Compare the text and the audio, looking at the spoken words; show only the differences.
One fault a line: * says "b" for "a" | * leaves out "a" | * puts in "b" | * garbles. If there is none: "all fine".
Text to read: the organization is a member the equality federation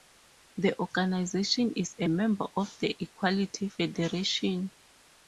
* puts in "of"